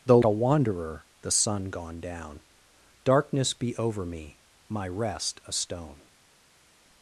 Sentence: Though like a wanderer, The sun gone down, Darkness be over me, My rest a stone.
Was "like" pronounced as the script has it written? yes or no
no